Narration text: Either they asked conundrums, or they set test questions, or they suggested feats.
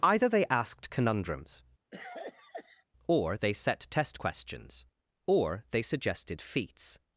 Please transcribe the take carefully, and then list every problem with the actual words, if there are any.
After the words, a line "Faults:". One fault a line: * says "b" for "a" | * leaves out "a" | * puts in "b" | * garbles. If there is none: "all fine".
Either they asked conundrums, or they set test questions, or they suggested feats.
Faults:
all fine